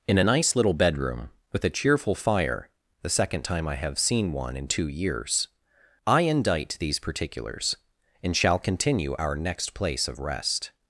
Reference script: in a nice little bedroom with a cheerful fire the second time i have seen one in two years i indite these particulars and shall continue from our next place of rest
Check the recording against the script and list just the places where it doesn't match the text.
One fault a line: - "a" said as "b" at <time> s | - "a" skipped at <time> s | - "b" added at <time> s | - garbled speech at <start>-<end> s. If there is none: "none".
- "from" skipped at 9.1 s